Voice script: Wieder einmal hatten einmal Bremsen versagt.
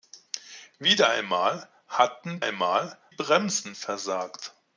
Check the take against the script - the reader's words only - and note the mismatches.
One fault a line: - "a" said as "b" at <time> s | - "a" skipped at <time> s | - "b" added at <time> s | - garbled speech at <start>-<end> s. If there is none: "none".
none